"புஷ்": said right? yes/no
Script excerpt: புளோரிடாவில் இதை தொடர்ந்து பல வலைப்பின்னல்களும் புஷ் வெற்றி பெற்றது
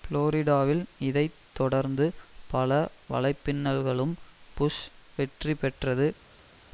yes